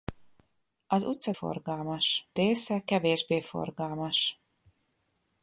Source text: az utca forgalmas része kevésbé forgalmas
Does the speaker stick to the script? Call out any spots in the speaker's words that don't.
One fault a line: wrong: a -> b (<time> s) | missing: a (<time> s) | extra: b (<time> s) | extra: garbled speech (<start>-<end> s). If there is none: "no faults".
no faults